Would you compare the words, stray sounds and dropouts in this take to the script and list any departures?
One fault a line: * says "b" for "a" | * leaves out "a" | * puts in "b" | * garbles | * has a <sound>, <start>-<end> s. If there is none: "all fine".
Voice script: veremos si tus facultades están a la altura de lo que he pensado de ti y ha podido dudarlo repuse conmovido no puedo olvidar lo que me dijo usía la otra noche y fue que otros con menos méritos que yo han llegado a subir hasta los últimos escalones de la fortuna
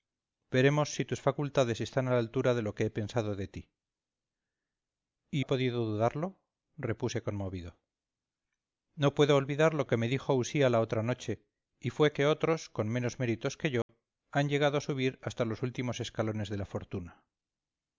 * has a dropout, 13.8-13.9 s